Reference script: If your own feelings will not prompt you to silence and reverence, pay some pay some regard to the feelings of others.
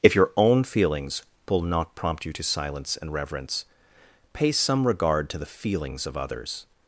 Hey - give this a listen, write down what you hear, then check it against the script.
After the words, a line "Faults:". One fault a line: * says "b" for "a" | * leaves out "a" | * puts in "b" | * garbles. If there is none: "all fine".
If your own feelings will not prompt you to silence and reverence, pay some regard to the feelings of others.
Faults:
* leaves out "pay some"